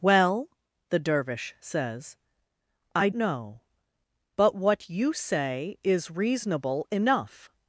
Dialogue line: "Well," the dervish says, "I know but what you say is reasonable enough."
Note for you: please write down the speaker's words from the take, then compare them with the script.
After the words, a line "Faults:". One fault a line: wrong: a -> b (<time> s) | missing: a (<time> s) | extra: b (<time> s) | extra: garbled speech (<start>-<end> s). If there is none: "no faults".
"Well," the dervish says, "I know but what you say is reasonable enough."
Faults:
no faults